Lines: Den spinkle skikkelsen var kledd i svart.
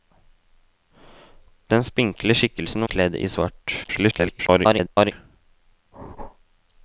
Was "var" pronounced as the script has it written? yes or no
no